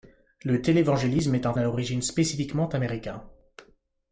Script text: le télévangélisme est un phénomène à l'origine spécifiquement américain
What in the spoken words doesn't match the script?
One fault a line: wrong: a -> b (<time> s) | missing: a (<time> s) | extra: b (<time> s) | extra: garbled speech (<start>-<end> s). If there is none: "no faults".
missing: phénomène (1.5 s)